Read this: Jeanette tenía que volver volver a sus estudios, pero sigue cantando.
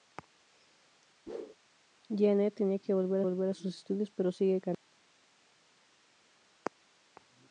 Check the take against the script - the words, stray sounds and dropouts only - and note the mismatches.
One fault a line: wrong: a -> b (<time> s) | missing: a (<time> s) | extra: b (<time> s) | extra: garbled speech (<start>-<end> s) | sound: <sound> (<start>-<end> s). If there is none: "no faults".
sound: whoosh (1.3-1.5 s)